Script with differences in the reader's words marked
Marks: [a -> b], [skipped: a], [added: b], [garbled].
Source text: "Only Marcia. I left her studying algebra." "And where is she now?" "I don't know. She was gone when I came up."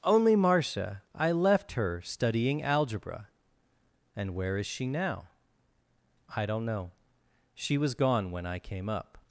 "Only Marcia. I left her studying algebra." "And where is she now?" "I don't know. She was gone when I came up."